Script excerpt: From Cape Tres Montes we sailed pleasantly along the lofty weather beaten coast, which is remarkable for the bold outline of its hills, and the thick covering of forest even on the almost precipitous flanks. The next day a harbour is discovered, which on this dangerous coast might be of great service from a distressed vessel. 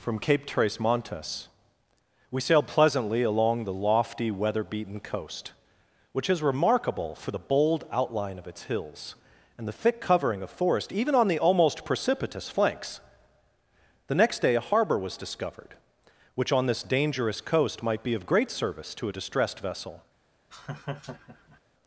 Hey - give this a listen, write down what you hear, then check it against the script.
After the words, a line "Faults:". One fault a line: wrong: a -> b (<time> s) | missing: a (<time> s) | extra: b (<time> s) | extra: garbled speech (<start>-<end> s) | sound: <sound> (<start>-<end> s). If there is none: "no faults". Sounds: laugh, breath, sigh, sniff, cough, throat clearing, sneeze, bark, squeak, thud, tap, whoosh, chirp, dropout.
From Cape Tres Montes we sailed pleasantly along the lofty weather beaten coast, which is remarkable for the bold outline of its hills, and the thick covering of forest even on the almost precipitous flanks. The next day a harbour was discovered, which on this dangerous coast might be of great service to a distressed vessel.
Faults:
wrong: is -> was (15.0 s)
wrong: from -> to (18.9 s)
sound: laugh (20.5-21.6 s)